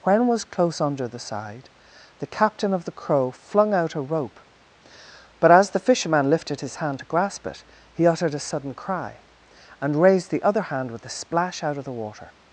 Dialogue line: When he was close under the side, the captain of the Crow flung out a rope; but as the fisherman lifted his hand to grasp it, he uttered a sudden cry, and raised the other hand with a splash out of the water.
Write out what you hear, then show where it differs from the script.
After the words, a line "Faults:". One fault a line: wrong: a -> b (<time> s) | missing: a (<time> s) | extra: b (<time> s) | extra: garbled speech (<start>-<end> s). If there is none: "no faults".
When was close under the side, the captain of the Crow flung out a rope; but as the fisherman lifted his hand to grasp it, he uttered a sudden cry, and raised the other hand with a splash out of the water.
Faults:
missing: he (0.3 s)